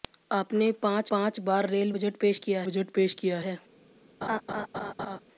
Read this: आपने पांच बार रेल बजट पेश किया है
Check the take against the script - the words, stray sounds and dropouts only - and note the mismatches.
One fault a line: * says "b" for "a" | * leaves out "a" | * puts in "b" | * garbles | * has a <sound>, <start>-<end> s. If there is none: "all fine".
* puts in "पांच"
* puts in "बजट पेश किया"
* has a laugh, 4.2-5.2 s